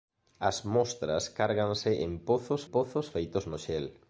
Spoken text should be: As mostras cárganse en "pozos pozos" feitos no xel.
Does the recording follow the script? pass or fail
pass